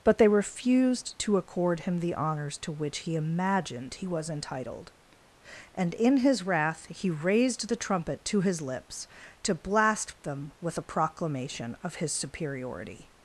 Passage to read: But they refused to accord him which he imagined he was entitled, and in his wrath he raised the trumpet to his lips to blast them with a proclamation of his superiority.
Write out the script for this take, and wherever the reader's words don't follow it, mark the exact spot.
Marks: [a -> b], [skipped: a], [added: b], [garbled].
But they refused to accord him [added: the honors to] which he imagined he was entitled, and in his wrath he raised the trumpet to his lips to blast them with a proclamation of his superiority.